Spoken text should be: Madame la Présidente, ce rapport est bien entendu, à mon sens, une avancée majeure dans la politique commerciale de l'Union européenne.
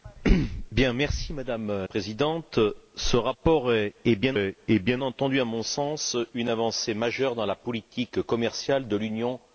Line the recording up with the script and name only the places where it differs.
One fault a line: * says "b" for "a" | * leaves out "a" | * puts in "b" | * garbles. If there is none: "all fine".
* leaves out "la"
* puts in "est bien"